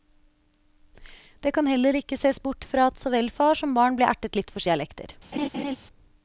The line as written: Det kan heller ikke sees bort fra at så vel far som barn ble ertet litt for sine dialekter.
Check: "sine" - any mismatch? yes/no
yes